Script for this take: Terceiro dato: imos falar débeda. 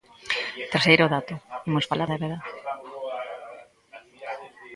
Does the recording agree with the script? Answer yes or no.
yes